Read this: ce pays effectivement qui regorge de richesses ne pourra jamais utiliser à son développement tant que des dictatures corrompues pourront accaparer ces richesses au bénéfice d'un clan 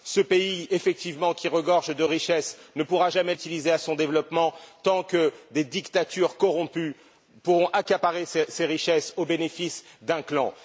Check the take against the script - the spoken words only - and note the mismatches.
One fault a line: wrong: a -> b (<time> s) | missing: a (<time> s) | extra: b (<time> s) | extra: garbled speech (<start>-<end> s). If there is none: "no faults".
no faults